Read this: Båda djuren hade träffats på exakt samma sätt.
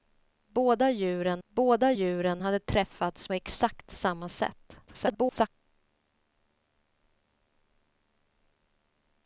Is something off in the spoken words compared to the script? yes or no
yes